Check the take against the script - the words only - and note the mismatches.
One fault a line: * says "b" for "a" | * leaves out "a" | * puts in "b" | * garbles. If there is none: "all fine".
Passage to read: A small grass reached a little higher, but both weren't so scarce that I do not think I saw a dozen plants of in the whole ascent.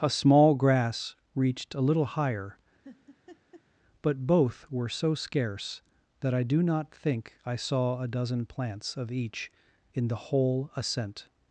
* says "were" for "weren't"
* puts in "each"